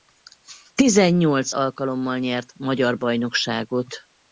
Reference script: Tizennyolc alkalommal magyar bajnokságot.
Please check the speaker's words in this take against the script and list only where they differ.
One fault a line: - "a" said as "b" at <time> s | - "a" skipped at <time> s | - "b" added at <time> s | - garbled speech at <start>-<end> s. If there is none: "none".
- "nyert" added at 2.2 s